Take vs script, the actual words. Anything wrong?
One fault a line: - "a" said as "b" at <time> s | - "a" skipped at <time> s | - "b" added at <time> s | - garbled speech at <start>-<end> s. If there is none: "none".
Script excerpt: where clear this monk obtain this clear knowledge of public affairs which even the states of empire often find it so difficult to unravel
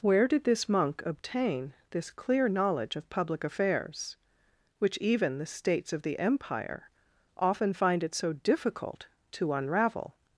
- "clear" said as "did" at 0.3 s
- "the" added at 6.0 s